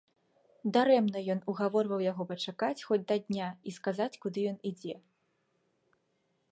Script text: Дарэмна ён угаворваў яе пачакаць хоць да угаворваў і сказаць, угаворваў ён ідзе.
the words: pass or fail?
fail